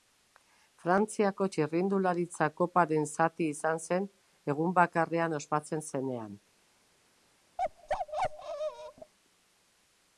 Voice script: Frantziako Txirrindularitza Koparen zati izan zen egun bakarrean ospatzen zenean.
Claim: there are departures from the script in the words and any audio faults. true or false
true